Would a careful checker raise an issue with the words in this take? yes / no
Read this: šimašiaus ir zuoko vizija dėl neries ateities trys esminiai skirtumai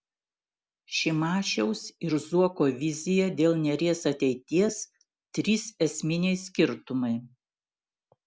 no